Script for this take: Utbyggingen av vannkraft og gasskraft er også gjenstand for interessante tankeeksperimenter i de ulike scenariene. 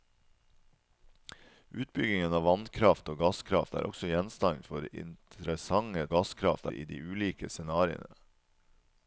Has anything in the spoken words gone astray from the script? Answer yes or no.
yes